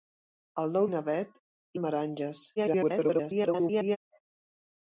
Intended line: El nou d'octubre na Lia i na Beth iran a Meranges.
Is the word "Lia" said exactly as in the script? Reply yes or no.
no